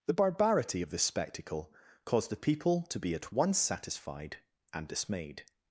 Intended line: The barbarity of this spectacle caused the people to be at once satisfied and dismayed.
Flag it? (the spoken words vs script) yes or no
no